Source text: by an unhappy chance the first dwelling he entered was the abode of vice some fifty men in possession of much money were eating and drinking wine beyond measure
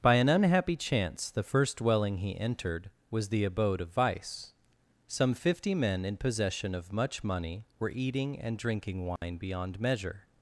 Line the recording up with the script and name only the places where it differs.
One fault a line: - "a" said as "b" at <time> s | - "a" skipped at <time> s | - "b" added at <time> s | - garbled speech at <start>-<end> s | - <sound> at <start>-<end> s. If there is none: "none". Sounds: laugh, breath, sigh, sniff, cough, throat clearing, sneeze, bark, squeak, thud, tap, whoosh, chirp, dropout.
- dropout at 9.2-9.2 s